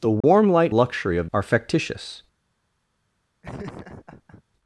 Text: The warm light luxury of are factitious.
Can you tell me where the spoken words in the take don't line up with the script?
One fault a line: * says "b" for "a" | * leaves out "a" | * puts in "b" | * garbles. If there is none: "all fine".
all fine